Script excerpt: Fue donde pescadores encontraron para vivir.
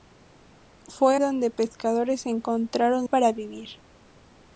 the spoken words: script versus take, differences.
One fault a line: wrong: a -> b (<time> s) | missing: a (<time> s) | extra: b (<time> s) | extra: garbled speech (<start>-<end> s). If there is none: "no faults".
no faults